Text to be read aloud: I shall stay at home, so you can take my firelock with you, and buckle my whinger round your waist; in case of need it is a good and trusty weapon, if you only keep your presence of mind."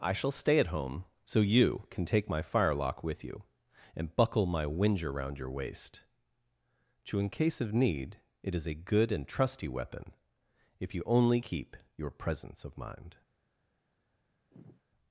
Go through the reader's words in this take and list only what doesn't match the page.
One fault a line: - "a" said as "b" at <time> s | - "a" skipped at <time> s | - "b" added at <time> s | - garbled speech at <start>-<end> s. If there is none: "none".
- "to" added at 7.0 s